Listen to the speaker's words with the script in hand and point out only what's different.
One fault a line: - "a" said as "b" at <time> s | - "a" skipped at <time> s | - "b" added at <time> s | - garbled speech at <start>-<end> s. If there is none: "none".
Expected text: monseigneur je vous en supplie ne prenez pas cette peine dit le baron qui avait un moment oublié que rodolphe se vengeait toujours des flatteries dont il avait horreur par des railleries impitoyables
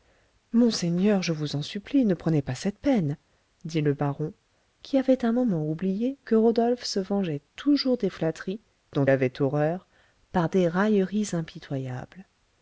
- "il" skipped at 9.1 s